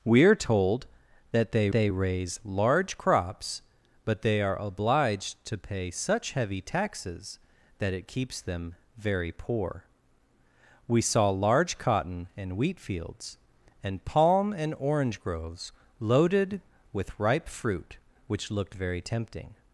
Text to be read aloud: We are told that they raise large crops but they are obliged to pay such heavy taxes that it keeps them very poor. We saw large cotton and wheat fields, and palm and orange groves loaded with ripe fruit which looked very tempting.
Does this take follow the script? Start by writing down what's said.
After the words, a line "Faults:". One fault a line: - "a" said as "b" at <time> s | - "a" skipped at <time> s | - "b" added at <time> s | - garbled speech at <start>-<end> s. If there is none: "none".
We are told that they they raise large crops but they are obliged to pay such heavy taxes that it keeps them very poor. We saw large cotton and wheat fields, and palm and orange groves loaded with ripe fruit which looked very tempting.
Faults:
- "they" added at 1.7 s